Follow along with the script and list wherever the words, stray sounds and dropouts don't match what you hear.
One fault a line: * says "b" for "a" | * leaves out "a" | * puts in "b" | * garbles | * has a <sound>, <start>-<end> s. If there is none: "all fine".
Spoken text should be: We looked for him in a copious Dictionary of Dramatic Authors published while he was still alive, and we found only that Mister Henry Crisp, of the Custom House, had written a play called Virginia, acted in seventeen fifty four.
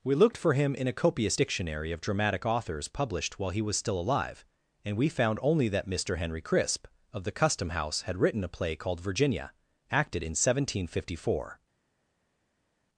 all fine